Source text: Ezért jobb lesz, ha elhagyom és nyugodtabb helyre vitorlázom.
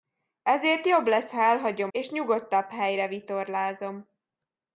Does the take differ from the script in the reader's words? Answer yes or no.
no